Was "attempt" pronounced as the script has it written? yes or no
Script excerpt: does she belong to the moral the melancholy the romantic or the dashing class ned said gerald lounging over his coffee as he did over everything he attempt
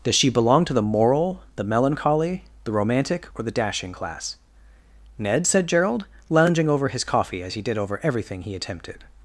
no